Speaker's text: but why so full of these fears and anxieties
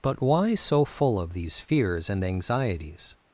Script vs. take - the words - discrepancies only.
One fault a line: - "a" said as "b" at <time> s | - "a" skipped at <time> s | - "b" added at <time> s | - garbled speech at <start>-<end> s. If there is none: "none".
none